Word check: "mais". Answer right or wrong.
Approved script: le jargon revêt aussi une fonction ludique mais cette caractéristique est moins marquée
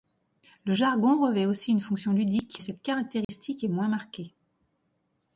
wrong